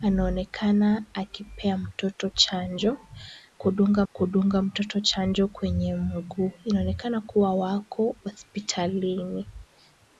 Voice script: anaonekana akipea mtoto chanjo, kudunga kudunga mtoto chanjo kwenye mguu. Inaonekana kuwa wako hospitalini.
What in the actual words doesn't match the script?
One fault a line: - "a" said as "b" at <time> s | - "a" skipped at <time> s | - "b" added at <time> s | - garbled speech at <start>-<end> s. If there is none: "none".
none